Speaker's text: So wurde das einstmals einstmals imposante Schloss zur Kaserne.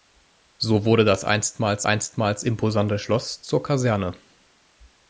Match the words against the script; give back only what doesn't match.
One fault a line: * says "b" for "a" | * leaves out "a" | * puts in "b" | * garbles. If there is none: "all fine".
all fine